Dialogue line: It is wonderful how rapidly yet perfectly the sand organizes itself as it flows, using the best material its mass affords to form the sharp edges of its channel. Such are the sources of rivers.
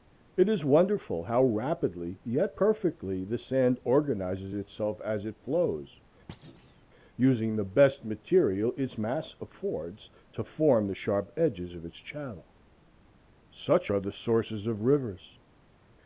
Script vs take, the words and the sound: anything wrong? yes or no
yes